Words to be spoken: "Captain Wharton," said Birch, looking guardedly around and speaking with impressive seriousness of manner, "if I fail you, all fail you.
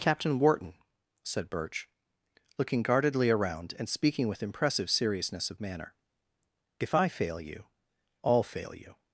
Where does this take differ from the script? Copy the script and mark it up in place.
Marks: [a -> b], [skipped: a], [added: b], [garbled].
"Captain Wharton," said Birch, looking guardedly around and speaking with impressive seriousness of manner, "if I fail you, all fail you.